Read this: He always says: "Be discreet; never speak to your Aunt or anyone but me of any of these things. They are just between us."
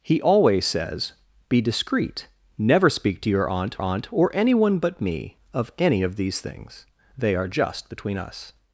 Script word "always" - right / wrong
right